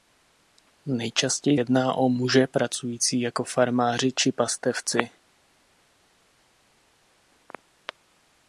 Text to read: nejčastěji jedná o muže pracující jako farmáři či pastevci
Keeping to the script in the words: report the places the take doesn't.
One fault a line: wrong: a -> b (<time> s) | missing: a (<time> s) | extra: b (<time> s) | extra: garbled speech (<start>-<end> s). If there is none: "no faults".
no faults